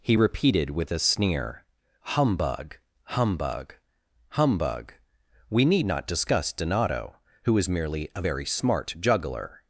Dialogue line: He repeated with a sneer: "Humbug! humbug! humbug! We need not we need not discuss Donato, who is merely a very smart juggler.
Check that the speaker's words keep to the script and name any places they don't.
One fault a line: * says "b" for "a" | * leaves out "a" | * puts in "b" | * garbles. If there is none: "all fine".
* leaves out "we need not"